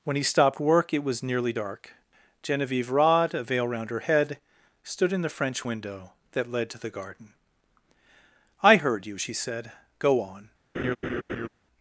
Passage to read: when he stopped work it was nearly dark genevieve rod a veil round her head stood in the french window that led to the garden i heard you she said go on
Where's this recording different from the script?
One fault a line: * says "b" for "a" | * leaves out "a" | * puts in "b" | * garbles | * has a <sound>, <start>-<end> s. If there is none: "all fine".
* has a laugh, 10.7-11.5 s